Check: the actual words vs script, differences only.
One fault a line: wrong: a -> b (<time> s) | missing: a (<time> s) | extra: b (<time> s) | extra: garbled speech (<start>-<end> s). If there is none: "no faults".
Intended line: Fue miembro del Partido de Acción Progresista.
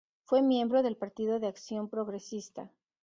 no faults